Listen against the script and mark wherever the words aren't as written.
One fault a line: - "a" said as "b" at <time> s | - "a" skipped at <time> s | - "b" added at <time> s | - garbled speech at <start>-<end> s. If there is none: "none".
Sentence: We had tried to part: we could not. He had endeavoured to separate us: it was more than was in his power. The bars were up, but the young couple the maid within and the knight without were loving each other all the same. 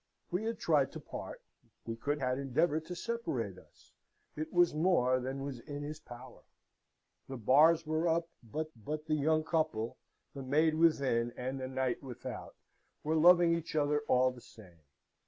- "not He" skipped at 2.2 s
- "but" added at 8.8 s